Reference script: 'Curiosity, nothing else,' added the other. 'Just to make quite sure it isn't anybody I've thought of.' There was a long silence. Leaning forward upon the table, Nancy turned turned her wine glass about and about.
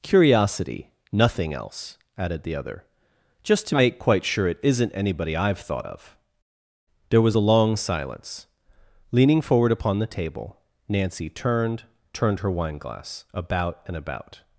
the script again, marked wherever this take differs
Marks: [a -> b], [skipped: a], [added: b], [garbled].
'Curiosity, nothing else,' added the other. 'Just to make quite sure it isn't anybody I've thought of.' There was a long silence. Leaning forward upon the table, Nancy turned turned her wine glass about and about.